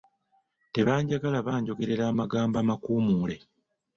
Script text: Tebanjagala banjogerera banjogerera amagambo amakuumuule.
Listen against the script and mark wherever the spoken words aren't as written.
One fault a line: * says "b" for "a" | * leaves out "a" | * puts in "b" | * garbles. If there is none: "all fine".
* leaves out "banjogerera"